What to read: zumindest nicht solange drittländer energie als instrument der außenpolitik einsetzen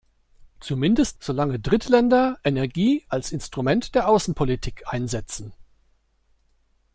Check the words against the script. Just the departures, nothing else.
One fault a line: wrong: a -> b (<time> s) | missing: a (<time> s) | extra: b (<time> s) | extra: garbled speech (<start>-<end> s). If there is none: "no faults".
missing: nicht (1.2 s)